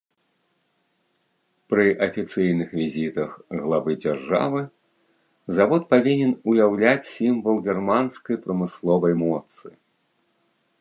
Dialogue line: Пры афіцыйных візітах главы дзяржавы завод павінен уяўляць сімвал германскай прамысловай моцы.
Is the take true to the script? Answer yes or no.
yes